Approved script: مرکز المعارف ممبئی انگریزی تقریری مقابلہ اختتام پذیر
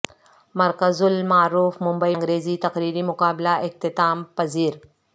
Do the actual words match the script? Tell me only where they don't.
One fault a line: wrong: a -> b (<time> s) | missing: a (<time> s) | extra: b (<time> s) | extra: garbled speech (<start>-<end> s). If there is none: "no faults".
no faults